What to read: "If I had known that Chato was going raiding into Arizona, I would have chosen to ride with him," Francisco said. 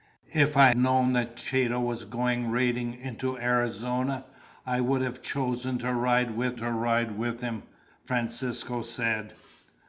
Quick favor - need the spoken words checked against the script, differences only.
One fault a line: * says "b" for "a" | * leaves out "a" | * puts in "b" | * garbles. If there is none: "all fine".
* leaves out "had"
* puts in "to ride with"